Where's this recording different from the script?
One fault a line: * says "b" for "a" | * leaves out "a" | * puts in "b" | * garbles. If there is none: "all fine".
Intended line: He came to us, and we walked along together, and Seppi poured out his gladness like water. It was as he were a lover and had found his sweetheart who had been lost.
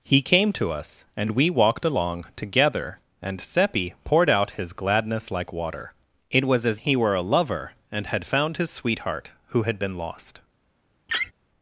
all fine